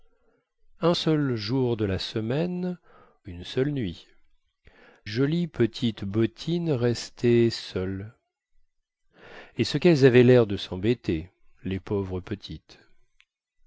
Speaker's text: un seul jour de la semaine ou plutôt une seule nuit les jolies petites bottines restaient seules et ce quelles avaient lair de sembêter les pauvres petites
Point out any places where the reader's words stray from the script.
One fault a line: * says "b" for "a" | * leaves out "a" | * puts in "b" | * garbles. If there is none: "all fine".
* leaves out "ou plutôt"
* leaves out "les"